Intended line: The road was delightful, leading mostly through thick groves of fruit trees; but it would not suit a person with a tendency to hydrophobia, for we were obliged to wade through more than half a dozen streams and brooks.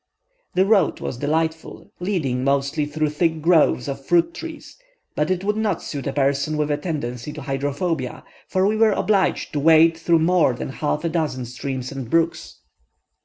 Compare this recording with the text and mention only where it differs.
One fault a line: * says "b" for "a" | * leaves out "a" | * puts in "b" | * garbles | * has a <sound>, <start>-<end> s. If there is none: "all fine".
all fine